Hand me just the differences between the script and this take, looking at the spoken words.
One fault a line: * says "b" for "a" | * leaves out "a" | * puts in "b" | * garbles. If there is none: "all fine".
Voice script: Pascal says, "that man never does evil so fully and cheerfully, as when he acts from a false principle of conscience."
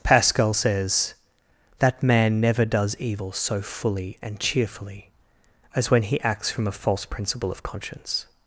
all fine